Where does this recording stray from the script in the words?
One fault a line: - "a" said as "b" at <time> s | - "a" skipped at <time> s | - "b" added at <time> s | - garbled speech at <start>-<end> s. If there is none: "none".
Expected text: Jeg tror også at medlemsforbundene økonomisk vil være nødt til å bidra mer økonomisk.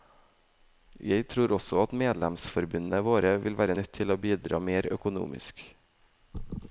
- "økonomisk" said as "våre" at 3.0 s